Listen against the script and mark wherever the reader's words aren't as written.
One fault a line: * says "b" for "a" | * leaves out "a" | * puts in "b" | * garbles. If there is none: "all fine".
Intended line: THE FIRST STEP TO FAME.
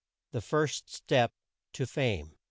all fine